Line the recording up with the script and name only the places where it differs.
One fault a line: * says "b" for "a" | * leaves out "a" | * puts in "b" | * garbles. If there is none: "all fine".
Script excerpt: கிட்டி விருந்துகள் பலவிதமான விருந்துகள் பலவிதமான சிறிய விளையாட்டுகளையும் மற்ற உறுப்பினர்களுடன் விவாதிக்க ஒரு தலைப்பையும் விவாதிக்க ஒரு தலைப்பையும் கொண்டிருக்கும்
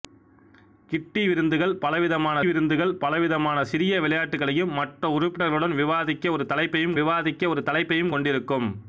all fine